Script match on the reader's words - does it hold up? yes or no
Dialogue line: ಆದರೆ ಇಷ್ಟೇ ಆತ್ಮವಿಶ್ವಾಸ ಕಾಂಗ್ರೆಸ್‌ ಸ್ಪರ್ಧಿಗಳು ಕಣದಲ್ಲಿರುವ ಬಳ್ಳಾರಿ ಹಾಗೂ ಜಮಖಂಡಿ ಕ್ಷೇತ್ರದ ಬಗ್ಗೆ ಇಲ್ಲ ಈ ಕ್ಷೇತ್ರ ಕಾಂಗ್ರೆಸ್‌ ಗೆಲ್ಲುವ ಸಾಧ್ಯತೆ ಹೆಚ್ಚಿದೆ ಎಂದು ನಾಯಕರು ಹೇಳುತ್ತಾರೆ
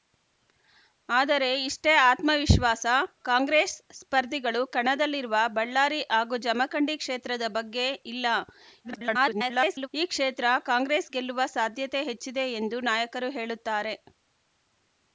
no